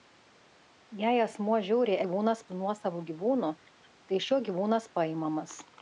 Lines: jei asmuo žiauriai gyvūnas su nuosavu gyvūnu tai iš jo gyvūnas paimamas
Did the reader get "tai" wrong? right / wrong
right